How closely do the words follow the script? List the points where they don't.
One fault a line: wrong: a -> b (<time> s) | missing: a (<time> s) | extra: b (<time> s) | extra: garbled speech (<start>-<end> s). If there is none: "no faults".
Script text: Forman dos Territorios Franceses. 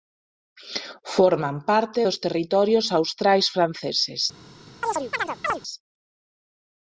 extra: parte (1.7 s)
extra: Austrais (3.0 s)